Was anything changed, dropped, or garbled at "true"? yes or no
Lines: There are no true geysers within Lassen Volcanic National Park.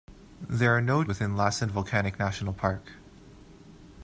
yes